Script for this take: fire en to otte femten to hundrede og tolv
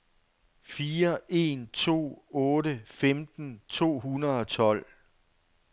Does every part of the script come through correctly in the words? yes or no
yes